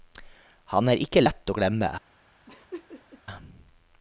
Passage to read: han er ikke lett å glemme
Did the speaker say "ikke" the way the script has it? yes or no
yes